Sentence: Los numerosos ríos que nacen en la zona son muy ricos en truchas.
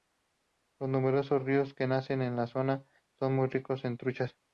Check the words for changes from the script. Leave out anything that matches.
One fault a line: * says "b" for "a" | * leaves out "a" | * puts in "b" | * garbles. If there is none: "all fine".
all fine